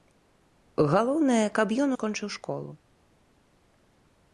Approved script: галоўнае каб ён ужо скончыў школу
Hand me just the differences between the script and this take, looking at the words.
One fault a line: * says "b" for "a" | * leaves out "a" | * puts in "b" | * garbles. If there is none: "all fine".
* leaves out "ужо"